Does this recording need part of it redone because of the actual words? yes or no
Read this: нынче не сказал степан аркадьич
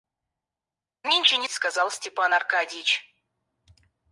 no